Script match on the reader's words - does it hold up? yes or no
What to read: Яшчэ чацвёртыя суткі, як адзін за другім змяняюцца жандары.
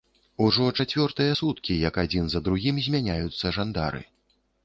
no